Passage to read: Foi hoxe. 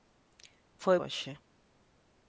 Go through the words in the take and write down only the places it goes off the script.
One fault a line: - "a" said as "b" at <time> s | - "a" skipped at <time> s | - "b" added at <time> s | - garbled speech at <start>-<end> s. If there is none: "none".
none